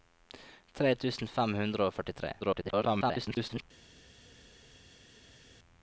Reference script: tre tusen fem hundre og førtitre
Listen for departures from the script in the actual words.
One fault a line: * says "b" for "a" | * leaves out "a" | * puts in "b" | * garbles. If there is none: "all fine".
* garbles